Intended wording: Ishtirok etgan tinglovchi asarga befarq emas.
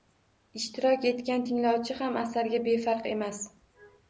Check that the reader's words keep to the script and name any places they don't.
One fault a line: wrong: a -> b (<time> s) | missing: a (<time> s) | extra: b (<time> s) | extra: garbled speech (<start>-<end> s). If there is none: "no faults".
extra: ham (2.0 s)